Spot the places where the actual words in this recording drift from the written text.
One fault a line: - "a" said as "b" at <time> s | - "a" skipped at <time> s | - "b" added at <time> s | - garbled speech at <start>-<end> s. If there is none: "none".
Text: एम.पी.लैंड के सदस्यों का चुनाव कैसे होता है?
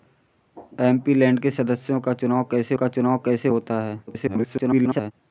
- "का चुनाव कैसे" added at 2.8 s
- garbled speech at 4.1-5.1 s